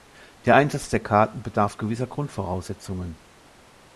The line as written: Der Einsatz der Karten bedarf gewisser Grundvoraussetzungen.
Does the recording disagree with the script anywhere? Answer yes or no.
no